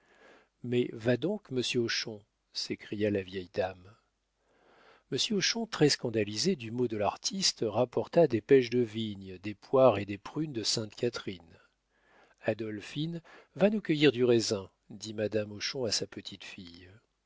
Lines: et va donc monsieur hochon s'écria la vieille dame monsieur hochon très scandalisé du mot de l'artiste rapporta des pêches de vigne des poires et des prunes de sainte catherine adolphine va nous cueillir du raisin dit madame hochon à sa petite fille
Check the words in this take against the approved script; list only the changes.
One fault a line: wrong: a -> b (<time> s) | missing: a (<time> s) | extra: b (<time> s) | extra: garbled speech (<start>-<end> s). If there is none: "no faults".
wrong: et -> mais (0.6 s)